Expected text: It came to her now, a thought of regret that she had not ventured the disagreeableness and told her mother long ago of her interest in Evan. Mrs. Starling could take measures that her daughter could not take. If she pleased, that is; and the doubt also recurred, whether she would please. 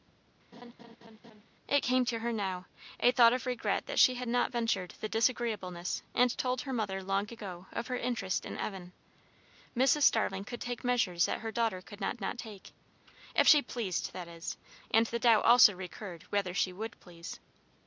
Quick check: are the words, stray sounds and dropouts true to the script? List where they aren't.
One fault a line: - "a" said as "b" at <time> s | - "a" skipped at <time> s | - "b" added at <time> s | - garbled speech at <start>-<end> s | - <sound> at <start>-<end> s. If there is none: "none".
- laugh at 0.5-1.4 s
- "not" added at 12.2 s